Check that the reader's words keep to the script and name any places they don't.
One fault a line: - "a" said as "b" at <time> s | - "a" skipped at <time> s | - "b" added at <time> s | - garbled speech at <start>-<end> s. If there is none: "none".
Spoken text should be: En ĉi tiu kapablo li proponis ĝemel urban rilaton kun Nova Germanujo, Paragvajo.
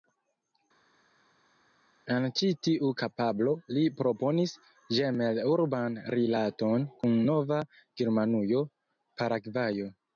none